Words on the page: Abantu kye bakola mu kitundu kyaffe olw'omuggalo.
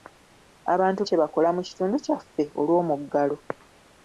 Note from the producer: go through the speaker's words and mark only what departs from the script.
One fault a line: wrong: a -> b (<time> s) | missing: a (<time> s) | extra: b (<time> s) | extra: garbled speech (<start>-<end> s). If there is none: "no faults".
no faults